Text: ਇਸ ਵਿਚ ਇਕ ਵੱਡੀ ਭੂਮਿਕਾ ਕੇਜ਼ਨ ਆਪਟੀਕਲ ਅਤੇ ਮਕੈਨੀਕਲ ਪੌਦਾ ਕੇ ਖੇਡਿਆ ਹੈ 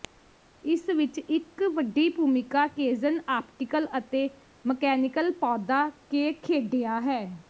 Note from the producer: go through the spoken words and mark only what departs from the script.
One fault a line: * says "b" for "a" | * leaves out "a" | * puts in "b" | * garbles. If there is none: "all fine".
all fine